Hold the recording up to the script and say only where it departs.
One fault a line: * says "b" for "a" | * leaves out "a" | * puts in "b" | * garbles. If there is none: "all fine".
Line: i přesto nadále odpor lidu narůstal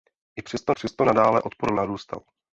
* puts in "přesto"
* leaves out "lidu"